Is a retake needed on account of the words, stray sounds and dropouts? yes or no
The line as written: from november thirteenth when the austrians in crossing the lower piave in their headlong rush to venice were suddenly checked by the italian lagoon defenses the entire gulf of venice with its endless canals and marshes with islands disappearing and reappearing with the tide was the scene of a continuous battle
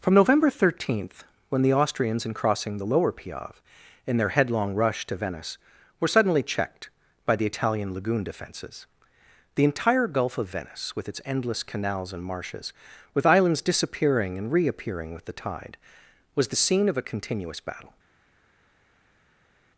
no